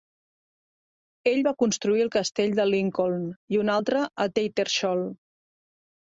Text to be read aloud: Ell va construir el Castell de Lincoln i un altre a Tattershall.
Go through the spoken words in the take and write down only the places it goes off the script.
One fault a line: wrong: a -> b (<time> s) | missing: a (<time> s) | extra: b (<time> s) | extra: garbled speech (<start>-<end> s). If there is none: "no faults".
no faults